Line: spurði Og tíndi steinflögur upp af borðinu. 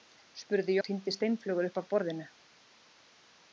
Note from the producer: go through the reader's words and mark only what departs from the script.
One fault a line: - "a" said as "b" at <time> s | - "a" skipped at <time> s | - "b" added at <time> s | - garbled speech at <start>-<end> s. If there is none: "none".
none